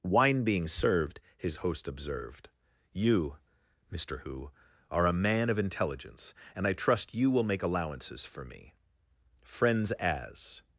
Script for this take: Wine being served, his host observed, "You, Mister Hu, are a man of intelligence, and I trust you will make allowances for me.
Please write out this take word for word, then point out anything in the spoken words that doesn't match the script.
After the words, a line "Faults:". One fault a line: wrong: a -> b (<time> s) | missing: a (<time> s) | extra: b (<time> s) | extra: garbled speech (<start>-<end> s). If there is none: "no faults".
Wine being served, his host observed, "You, Mister Hu, are a man of intelligence, and I trust you will make allowances for me. Friends as
Faults:
extra: Friends as (9.4 s)